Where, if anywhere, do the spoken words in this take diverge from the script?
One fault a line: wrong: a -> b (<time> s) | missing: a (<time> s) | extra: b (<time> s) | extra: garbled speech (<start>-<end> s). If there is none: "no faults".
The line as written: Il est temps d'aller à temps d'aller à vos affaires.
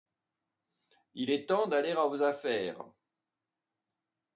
missing: temps d'aller à (2.1 s)